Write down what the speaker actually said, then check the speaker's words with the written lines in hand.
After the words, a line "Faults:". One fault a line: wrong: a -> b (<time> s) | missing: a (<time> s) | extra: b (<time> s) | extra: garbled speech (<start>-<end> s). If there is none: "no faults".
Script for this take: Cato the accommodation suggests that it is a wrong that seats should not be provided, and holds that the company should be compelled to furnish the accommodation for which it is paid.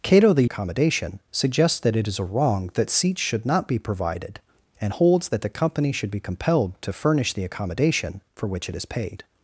Cato the accommodation suggests that it is a wrong that seats should not be provided, and holds that the company should be compelled to furnish the accommodation for which it is paid.
Faults:
no faults